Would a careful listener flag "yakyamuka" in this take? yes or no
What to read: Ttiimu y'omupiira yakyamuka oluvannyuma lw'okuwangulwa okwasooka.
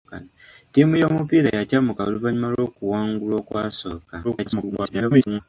no